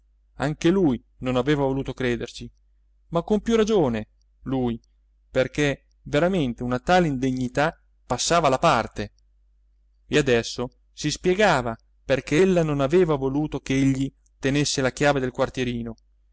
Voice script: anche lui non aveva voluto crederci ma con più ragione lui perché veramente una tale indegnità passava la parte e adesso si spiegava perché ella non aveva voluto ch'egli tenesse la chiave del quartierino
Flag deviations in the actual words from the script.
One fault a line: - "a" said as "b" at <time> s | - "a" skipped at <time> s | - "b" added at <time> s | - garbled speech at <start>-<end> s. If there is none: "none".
none